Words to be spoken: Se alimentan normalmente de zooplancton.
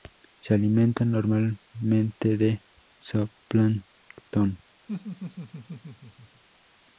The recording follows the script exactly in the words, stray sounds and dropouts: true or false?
false